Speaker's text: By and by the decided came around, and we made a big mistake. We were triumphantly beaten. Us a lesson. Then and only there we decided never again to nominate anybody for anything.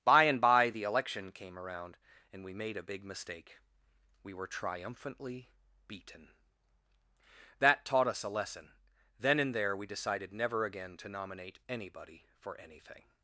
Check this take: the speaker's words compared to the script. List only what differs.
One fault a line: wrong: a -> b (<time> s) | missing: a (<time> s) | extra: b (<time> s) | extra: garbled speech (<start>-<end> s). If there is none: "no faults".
wrong: decided -> election (0.8 s)
extra: That taught (7.6 s)
missing: only (9.5 s)